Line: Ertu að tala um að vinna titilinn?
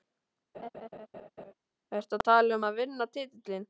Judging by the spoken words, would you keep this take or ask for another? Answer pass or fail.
pass